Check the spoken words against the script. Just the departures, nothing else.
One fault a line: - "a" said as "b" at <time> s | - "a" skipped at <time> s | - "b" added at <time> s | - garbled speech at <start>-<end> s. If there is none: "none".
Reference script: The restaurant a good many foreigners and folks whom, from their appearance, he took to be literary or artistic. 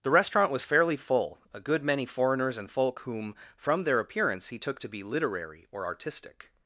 - "was fairly full" added at 0.5 s
- "folks" said as "folk" at 2.7 s